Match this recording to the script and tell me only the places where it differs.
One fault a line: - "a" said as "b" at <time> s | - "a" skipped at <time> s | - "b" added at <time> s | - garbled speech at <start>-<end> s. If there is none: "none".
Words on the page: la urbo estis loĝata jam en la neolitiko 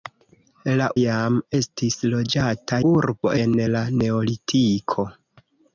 - "urbo" said as "jam" at 1.0 s
- "jam" said as "urbo" at 2.9 s